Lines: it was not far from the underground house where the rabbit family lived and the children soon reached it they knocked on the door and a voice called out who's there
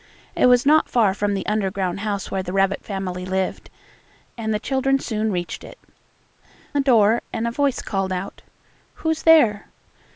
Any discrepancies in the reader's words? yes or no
yes